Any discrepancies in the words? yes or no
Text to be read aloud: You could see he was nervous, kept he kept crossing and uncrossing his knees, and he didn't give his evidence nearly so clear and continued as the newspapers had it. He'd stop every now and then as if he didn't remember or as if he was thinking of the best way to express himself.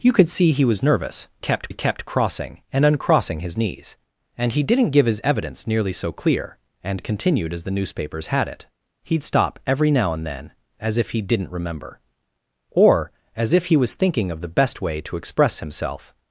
no